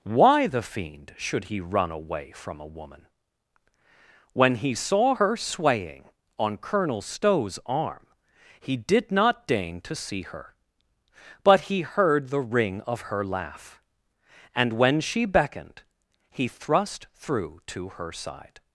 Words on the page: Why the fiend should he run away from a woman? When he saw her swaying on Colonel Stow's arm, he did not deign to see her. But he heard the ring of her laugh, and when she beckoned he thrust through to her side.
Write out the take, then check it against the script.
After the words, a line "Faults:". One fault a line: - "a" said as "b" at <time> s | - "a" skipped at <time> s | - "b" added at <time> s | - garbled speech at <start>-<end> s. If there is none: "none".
Why the fiend should he run away from a woman? When he saw her swaying on Colonel Stow's arm, he did not deign to see her. But he heard the ring of her laugh, and when she beckoned he thrust through to her side.
Faults:
none